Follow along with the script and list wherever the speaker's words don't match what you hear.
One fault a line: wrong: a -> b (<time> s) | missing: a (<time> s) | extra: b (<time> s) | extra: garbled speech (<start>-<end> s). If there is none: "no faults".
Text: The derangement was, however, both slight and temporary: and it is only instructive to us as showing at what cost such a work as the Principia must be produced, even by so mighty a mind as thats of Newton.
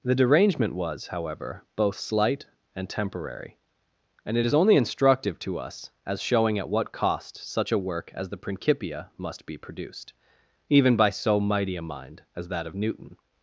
wrong: thats -> that (12.5 s)